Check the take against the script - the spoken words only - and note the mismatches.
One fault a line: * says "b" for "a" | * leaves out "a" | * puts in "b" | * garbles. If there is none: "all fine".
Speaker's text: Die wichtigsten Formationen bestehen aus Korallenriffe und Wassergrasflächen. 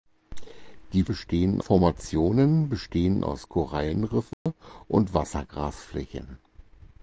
* says "bestehen" for "wichtigsten"